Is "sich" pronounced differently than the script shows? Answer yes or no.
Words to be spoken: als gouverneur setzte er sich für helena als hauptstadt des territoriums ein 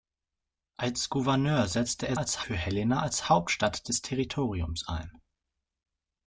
yes